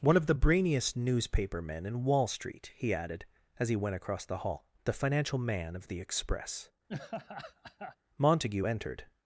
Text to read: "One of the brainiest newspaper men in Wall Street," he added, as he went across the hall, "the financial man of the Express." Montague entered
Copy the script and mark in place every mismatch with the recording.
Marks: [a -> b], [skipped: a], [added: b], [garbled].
"One of the brainiest newspaper men in Wall Street," he added, as he went across the hall, "the financial man of the Express." Montague entered